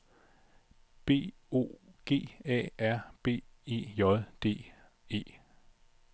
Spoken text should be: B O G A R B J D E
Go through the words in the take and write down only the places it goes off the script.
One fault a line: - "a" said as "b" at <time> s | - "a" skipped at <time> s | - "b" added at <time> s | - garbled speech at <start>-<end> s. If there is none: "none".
- "E" added at 3.7 s